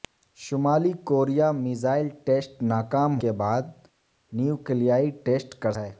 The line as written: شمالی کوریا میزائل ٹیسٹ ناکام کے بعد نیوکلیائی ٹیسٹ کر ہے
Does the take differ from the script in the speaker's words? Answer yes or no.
no